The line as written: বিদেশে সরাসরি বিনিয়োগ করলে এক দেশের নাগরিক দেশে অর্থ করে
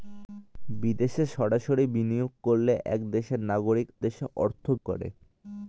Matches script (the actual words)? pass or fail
pass